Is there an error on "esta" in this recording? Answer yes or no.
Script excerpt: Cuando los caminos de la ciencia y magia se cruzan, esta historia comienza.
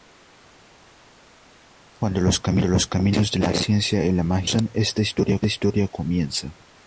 no